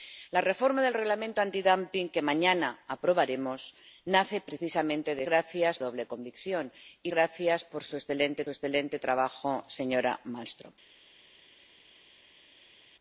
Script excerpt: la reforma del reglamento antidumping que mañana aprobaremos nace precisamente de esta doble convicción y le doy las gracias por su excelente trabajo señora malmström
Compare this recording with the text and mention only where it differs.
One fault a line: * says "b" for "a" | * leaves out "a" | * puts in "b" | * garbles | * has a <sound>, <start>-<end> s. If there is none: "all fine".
* says "gracias" for "esta"
* leaves out "le doy las"
* puts in "excelente"